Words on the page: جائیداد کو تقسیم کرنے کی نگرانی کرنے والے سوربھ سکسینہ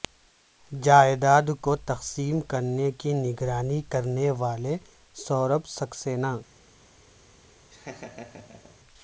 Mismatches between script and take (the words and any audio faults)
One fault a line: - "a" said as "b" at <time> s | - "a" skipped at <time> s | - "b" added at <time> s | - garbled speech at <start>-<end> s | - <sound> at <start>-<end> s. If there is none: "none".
- laugh at 7.7-8.8 s